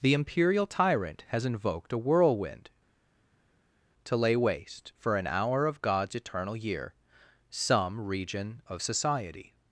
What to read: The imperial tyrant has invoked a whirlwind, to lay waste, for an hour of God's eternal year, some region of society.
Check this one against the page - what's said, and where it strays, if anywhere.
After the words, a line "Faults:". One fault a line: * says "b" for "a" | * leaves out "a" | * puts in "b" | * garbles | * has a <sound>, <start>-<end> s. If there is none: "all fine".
The imperial tyrant has invoked a whirlwind, to lay waste, for an hour of God's eternal year, some region of society.
Faults:
all fine